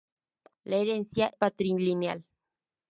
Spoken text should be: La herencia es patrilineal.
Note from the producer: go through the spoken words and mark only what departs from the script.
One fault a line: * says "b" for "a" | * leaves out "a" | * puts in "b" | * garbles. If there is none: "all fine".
* leaves out "es"